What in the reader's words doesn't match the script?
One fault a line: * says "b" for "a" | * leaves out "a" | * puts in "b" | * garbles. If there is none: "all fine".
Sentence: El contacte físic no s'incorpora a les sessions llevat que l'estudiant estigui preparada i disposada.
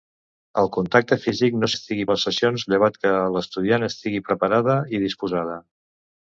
* says "estigui" for "s'incorpora"